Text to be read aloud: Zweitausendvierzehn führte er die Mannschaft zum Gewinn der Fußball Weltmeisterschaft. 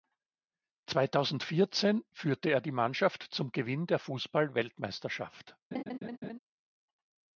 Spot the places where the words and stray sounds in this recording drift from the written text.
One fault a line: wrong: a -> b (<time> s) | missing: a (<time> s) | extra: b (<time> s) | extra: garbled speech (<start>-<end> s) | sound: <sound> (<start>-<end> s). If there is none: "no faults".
sound: laugh (5.7-6.4 s)